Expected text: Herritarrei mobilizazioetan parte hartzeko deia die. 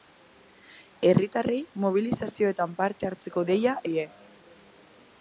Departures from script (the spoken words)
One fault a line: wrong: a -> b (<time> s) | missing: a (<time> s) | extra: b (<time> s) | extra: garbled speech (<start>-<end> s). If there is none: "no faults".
no faults